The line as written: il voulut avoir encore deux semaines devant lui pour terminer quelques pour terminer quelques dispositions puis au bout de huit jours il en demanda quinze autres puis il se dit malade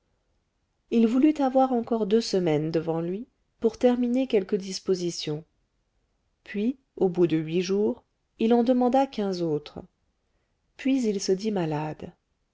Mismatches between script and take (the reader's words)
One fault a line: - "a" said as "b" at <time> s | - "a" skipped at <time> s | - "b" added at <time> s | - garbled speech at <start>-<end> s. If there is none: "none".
- "pour terminer quelques" skipped at 4.6 s